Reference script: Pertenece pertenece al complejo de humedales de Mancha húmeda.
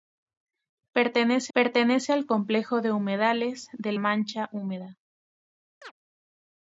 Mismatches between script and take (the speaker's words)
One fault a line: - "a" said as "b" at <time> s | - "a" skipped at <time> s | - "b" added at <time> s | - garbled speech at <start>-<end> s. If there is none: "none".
none